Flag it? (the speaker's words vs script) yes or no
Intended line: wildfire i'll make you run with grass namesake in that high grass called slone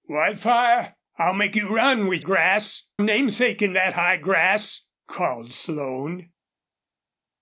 no